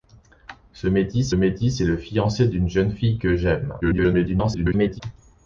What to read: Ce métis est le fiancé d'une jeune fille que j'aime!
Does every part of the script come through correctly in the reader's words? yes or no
no